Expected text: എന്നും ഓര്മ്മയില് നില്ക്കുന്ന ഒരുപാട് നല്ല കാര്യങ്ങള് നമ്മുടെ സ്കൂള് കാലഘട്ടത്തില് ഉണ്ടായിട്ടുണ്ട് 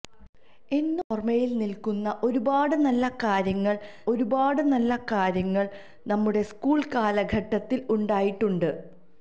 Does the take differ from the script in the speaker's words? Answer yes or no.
yes